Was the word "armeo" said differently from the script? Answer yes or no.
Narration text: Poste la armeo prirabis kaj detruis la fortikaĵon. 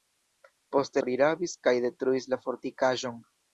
yes